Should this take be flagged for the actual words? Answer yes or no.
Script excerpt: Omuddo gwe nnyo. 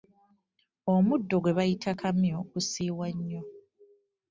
yes